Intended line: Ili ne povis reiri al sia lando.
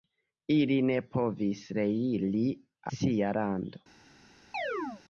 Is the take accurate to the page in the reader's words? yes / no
no